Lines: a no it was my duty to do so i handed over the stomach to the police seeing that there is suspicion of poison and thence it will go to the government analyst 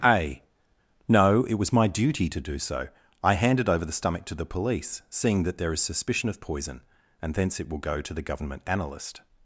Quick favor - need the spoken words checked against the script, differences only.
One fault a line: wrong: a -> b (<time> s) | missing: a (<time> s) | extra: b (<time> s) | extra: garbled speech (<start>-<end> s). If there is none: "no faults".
no faults